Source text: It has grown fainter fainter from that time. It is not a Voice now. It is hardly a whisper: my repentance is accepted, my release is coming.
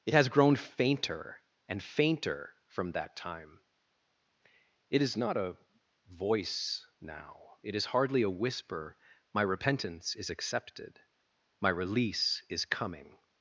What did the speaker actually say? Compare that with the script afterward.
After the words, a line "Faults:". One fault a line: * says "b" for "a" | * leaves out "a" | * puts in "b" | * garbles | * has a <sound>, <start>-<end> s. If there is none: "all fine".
It has grown fainter and fainter from that time. It is not a Voice now. It is hardly a whisper: my repentance is accepted, my release is coming.
Faults:
* puts in "and"